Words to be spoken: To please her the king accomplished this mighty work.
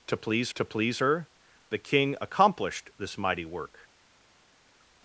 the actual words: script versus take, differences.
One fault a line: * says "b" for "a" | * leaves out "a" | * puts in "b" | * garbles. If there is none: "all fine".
* puts in "to please"